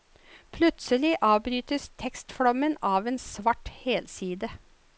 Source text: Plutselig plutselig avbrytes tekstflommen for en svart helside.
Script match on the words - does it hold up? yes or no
no